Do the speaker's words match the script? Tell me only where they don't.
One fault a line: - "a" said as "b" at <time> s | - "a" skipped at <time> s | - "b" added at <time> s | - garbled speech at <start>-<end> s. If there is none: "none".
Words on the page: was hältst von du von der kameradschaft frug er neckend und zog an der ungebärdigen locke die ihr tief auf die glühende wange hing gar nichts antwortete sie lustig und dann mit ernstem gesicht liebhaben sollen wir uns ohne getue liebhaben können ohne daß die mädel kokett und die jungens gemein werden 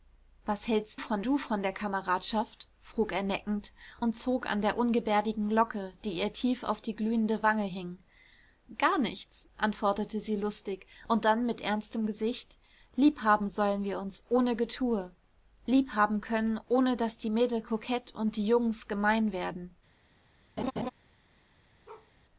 none